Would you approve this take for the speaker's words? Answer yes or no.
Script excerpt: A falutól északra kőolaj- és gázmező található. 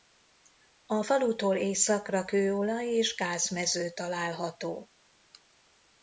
yes